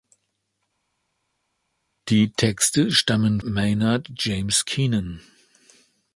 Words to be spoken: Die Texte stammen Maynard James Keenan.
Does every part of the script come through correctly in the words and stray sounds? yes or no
yes